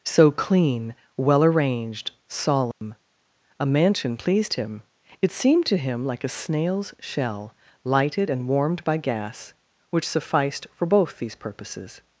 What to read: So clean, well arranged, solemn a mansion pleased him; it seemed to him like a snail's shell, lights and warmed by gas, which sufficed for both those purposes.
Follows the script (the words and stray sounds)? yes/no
no